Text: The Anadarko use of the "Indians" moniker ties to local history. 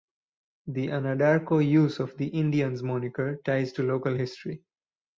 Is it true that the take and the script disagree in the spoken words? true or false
false